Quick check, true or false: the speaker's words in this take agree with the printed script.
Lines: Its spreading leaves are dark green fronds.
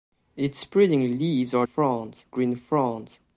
false